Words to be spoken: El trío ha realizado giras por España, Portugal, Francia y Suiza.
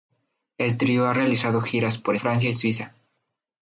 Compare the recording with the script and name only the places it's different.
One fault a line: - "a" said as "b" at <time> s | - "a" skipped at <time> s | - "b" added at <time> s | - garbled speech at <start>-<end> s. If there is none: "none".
- "España Portugal" skipped at 2.1 s